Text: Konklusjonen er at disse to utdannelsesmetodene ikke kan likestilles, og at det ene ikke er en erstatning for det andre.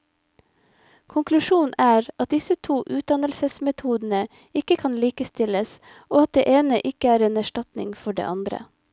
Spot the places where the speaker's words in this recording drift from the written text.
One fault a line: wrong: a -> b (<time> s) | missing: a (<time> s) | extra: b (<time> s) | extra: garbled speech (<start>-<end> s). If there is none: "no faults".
no faults